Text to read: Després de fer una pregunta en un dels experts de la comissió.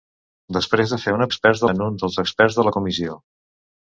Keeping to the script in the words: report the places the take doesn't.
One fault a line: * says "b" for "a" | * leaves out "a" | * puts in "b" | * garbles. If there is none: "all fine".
* says "experts" for "pregunta"